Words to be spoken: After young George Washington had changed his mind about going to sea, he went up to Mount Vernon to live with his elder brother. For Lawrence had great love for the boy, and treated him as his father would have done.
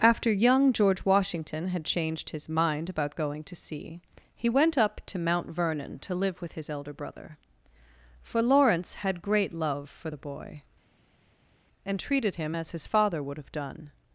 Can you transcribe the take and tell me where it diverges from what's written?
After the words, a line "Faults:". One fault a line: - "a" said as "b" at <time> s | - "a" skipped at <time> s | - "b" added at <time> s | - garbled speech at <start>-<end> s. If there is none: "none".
After young George Washington had changed his mind about going to sea, he went up to Mount Vernon to live with his elder brother. For Lawrence had great love for the boy, and treated him as his father would have done.
Faults:
none